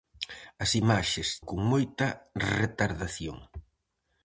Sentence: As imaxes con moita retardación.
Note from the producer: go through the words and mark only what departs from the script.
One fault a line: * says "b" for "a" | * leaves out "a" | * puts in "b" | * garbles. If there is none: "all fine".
all fine